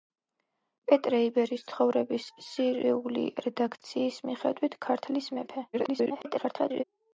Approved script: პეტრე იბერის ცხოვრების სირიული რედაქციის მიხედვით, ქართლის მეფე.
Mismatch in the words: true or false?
true